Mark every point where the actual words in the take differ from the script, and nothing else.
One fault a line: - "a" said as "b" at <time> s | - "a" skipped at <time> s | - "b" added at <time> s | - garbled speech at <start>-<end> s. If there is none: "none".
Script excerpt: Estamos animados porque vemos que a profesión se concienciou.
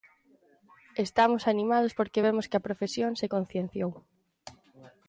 none